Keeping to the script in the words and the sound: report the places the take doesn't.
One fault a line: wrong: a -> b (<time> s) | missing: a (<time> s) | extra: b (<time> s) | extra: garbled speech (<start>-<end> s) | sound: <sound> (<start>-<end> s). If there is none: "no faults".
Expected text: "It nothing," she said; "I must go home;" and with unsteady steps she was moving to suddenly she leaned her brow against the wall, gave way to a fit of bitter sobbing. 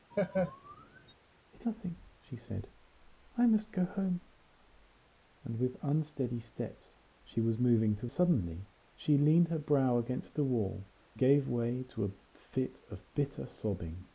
sound: laugh (0.1-1.1 s)